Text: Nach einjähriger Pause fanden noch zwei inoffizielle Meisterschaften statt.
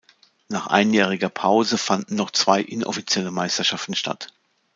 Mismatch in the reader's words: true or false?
false